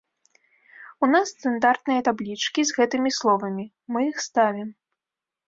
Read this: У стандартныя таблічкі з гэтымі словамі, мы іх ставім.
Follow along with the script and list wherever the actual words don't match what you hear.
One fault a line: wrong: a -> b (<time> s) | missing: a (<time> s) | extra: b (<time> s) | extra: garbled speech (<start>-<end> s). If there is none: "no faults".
extra: нас (1.1 s)